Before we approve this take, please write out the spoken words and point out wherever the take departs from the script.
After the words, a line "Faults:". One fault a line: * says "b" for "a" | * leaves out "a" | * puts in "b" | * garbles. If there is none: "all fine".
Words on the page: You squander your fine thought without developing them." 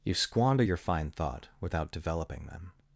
You squander your fine thought without developing them."
Faults:
all fine